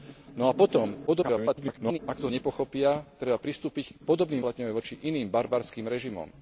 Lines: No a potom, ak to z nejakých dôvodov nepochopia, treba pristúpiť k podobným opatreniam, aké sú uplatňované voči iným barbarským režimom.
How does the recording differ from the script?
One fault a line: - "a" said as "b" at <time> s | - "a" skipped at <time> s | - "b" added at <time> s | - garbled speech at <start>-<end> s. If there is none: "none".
- garbled speech at 1.1-2.0 s
- "z nejakých dôvodov" skipped at 2.3 s
- "opatreniam aké sú" skipped at 4.4 s